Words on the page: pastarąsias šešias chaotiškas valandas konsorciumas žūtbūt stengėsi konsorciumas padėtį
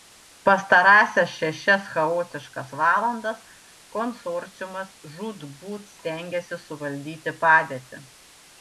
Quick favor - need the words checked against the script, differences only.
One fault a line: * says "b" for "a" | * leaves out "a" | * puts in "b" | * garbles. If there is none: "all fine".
* says "suvaldyti" for "konsorciumas"